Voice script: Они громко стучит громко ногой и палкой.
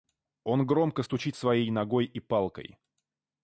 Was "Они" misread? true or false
true